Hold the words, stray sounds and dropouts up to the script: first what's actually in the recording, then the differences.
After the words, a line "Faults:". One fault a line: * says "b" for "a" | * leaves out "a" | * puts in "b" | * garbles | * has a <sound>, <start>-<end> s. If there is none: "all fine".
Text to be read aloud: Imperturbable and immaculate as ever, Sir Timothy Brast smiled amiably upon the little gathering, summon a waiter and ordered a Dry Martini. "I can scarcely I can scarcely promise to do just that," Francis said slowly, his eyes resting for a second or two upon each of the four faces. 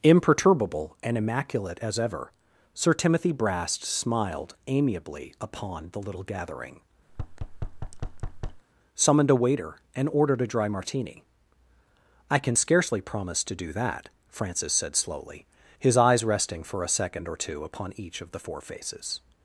Imperturbable and immaculate as ever, Sir Timothy Brast smiled amiably upon the little gathering, summoned a waiter and ordered a Dry Martini. "I can scarcely promise to do that," Francis said slowly, his eyes resting for a second or two upon each of the four faces.
Faults:
* has a thud, 7.1-8.6 s
* says "summoned" for "summon"
* leaves out "I can scarcely"
* leaves out "just"